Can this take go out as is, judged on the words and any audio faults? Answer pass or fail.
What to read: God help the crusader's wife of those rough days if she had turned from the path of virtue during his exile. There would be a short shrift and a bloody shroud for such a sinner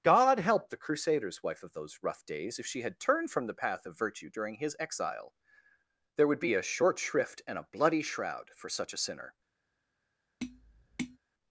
fail